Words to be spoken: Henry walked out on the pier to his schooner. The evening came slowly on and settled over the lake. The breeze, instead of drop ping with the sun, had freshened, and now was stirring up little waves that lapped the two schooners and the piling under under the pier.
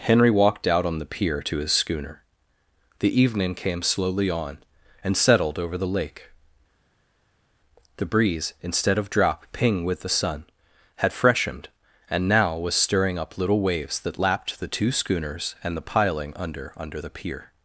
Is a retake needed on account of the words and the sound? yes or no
no